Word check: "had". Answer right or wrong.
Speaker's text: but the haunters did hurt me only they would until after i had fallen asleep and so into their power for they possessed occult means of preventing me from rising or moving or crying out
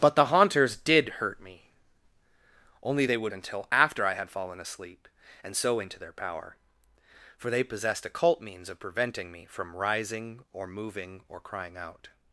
right